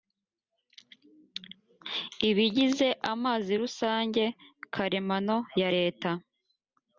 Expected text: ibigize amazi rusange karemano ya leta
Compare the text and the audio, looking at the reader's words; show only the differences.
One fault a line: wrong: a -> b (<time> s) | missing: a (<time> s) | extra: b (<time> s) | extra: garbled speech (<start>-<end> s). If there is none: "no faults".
no faults